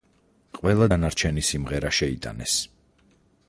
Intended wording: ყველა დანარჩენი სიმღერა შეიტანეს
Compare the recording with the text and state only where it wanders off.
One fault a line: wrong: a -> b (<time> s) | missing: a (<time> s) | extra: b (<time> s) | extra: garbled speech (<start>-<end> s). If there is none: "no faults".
no faults